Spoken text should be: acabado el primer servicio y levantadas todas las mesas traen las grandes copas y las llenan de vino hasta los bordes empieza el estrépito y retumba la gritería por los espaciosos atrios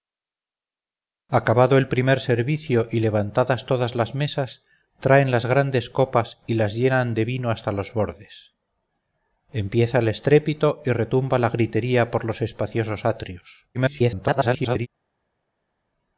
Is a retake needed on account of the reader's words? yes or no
yes